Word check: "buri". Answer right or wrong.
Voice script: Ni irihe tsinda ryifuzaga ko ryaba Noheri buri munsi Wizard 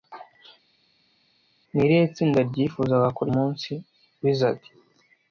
wrong